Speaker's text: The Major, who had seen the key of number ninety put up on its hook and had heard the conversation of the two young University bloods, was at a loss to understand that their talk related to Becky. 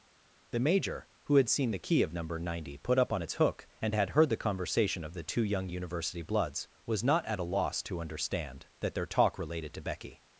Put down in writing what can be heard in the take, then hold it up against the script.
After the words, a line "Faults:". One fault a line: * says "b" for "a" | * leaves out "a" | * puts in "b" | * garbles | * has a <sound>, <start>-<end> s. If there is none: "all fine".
The Major, who had seen the key of number ninety put up on its hook and had heard the conversation of the two young University bloods, was not at a loss to understand that their talk related to Becky.
Faults:
* puts in "not"